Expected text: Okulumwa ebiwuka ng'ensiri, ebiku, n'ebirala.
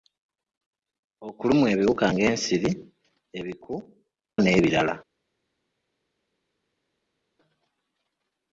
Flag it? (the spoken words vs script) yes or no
no